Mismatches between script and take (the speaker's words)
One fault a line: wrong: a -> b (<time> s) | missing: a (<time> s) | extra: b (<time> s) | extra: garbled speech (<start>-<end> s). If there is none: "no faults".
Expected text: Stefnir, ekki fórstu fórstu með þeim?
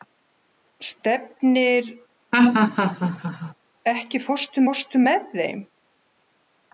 no faults